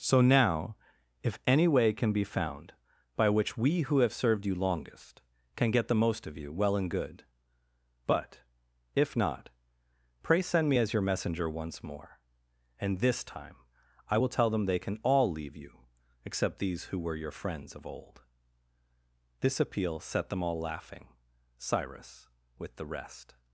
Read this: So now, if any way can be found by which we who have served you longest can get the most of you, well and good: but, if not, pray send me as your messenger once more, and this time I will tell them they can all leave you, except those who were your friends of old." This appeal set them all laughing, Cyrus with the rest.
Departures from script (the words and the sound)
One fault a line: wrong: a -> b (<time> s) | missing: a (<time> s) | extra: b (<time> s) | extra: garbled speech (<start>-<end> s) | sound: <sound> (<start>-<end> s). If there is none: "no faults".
wrong: those -> these (16.6 s)